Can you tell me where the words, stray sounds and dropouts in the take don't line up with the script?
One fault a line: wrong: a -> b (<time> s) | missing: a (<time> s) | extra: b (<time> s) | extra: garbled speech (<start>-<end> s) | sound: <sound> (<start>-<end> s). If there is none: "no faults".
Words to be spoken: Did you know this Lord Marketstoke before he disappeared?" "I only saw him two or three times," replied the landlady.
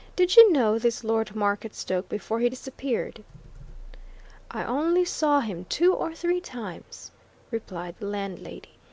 no faults